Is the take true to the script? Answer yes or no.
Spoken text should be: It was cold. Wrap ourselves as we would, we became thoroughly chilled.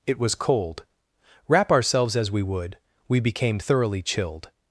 yes